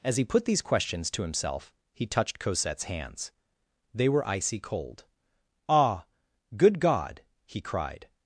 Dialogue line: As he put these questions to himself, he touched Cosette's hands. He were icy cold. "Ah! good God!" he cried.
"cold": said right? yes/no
yes